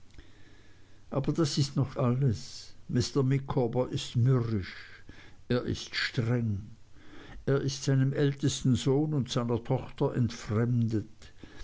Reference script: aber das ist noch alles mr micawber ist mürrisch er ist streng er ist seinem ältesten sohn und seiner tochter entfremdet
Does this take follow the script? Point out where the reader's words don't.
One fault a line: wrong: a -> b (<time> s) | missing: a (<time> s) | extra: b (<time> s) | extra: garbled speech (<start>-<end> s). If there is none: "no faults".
no faults